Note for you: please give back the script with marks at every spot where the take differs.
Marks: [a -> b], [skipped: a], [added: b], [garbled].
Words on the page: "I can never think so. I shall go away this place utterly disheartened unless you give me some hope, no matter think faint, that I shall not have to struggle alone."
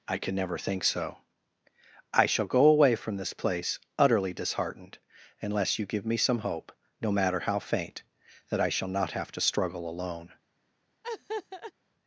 "I can never think so. I shall go away [added: from] this place utterly disheartened unless you give me some hope, no matter [think -> how] faint, that I shall not have to struggle alone."